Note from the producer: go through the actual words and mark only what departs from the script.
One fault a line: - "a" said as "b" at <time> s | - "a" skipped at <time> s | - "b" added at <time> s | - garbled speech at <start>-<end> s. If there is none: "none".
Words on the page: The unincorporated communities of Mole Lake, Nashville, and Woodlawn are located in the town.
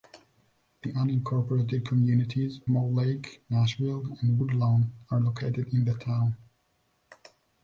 - "of" skipped at 2.6 s